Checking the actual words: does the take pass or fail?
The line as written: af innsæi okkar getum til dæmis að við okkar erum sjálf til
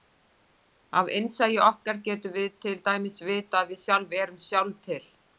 fail